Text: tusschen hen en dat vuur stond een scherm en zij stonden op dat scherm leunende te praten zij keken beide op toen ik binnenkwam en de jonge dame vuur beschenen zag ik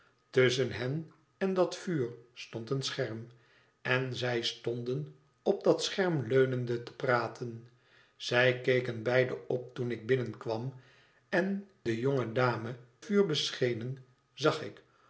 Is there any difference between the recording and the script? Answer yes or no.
no